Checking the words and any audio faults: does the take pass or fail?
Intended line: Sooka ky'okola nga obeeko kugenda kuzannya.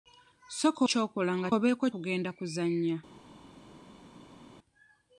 pass